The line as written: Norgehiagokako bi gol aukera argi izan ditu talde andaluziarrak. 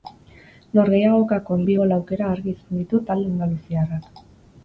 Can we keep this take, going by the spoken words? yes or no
yes